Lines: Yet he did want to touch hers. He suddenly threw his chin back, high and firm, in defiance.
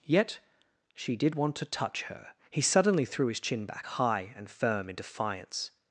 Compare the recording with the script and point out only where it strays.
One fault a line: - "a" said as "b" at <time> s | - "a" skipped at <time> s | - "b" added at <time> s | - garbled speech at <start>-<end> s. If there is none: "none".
- "he" said as "she" at 0.9 s
- "hers" said as "her" at 2.0 s